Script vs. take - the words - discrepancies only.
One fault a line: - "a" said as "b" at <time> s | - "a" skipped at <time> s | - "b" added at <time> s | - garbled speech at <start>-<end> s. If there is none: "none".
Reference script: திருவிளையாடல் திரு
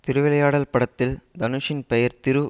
- "படத்தில் தனுஷின் பெயர்" added at 0.7 s